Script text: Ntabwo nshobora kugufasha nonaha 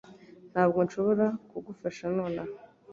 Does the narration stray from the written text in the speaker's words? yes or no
no